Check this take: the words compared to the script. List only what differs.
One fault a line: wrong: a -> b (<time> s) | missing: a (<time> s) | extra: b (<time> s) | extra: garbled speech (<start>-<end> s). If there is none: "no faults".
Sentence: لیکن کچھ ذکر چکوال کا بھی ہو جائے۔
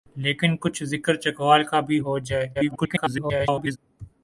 extra: garbled speech (2.5-3.8 s)